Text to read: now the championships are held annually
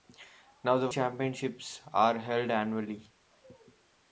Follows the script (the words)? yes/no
yes